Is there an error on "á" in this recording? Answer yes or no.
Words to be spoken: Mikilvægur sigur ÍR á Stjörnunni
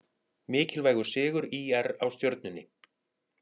no